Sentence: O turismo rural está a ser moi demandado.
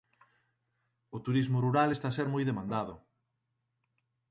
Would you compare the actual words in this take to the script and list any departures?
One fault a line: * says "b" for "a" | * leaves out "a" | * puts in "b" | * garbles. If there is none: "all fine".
all fine